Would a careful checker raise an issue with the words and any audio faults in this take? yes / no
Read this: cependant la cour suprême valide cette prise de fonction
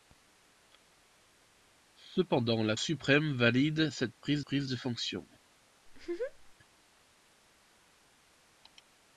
yes